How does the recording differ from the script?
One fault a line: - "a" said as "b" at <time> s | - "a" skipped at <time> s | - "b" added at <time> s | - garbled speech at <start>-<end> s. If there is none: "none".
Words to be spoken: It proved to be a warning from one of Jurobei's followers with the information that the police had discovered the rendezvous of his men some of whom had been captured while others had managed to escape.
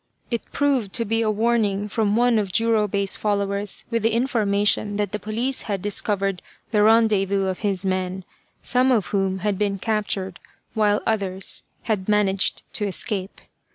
none